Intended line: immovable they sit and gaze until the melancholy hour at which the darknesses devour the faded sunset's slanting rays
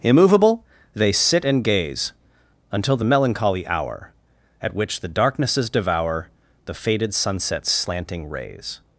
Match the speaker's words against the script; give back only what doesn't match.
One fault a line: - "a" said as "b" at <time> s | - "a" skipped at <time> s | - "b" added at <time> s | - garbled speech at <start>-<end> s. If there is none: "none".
none